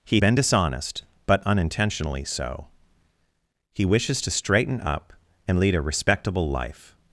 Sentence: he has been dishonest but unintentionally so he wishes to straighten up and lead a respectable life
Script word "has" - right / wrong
wrong